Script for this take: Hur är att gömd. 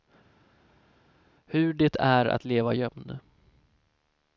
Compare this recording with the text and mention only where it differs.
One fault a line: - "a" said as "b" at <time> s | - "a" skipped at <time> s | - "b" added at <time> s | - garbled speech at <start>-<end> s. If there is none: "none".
- "det" added at 1.7 s
- "leva" added at 2.5 s